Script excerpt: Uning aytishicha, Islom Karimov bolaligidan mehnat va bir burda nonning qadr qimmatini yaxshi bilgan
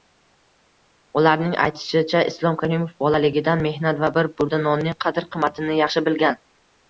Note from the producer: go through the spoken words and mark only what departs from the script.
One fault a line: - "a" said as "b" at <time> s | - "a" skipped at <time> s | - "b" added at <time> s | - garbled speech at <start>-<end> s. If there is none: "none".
- "Uning" said as "Ularning" at 1.2 s